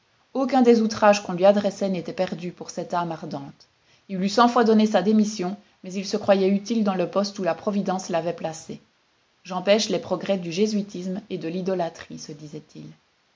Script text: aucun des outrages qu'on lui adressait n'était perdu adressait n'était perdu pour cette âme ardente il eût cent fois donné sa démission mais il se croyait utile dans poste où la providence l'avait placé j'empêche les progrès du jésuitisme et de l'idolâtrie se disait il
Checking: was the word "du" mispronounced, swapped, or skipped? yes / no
no